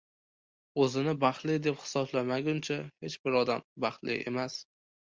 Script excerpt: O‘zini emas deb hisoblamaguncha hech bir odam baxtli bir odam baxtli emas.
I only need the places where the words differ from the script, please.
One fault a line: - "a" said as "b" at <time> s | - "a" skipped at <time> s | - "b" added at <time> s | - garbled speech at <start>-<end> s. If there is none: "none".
- "emas" said as "baxtli" at 1.2 s
- "bir odam baxtli" skipped at 4.2 s